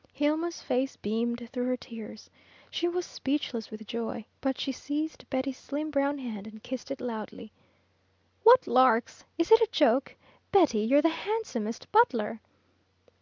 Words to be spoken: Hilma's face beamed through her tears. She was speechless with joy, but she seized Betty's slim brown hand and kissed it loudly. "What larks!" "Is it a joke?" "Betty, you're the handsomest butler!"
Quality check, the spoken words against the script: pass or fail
pass